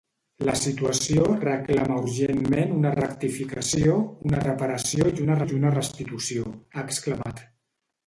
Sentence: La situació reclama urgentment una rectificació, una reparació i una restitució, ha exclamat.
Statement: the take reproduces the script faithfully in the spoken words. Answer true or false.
false